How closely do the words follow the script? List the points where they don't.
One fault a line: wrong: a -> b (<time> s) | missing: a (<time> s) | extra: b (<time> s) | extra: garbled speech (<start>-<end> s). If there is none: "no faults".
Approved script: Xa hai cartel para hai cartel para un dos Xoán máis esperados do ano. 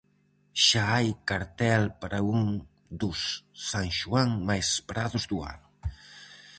missing: hai cartel para (2.2 s)
extra: San (3.7 s)